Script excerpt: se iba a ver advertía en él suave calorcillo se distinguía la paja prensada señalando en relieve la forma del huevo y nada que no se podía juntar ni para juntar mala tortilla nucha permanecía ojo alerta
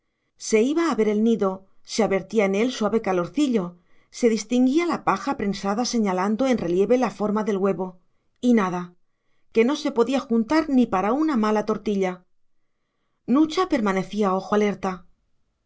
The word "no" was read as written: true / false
true